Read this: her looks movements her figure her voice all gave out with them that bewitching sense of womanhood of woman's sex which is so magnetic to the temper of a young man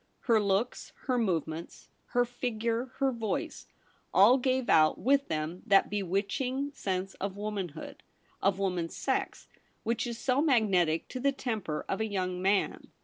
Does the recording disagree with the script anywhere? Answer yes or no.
yes